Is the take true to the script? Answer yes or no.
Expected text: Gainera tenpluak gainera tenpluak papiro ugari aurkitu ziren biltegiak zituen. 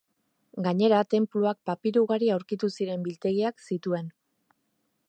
no